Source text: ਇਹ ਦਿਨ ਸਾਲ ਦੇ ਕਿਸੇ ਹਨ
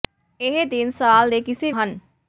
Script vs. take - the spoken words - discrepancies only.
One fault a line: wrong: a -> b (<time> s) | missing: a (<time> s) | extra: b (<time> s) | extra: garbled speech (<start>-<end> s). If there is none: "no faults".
no faults